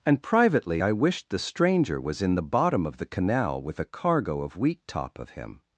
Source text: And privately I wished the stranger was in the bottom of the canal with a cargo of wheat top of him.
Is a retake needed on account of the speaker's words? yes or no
no